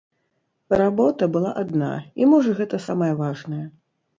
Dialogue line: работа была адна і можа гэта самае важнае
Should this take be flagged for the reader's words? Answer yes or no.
no